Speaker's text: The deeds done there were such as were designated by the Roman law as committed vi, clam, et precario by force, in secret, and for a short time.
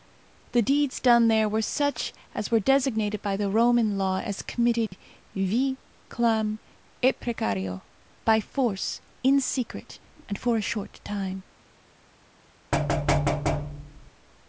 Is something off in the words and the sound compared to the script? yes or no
yes